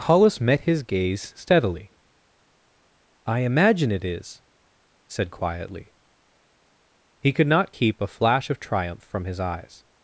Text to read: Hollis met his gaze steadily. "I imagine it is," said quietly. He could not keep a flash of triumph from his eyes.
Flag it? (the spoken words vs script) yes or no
no